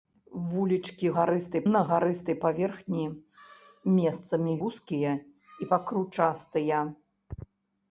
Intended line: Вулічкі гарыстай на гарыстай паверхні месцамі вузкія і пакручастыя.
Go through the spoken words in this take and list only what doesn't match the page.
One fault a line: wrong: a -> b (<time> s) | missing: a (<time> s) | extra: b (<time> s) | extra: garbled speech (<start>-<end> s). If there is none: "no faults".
no faults